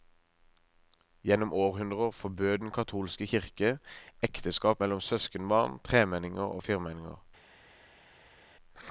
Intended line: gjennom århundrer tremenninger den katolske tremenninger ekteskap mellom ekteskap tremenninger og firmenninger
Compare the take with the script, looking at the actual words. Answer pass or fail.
fail